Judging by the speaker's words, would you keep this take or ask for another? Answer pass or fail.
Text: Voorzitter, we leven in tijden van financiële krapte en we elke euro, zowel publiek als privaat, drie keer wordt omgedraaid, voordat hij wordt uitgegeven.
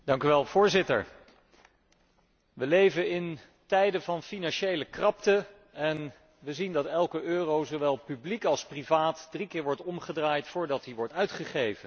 fail